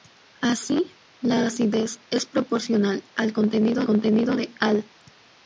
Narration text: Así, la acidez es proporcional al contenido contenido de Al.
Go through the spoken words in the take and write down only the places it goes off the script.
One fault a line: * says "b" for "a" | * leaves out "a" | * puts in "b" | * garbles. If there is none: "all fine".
all fine